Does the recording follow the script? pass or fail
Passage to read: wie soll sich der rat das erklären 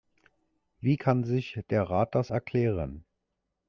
fail